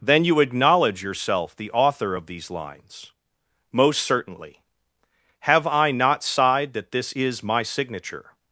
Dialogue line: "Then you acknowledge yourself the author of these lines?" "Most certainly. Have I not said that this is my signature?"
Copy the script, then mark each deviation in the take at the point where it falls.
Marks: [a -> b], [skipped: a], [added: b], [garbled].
"Then you acknowledge yourself the author of these lines?" "Most certainly. Have I not [said -> sighed] that this is my signature?"